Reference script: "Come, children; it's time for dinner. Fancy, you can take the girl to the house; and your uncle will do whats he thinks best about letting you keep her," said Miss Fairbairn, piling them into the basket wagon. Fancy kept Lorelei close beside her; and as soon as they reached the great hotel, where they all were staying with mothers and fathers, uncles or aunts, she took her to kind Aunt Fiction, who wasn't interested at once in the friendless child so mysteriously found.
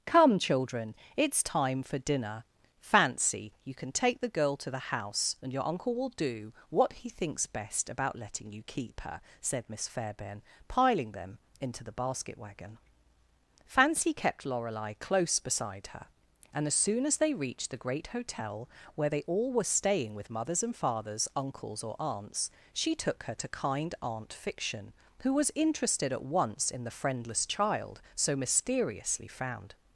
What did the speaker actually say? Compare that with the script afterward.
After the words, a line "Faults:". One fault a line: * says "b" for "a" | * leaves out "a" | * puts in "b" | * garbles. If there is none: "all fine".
"Come, children; it's time for dinner. Fancy, you can take the girl to the house; and your uncle will do what he thinks best about letting you keep her," said Miss Fairbairn, piling them into the basket wagon. Fancy kept Lorelei close beside her; and as soon as they reached the great hotel, where they all were staying with mothers and fathers, uncles or aunts, she took her to kind Aunt Fiction, who was interested at once in the friendless child so mysteriously found.
Faults:
* says "what" for "whats"
* says "was" for "wasn't"